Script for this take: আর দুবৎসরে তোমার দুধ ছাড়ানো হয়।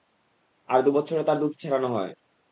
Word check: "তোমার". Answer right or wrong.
wrong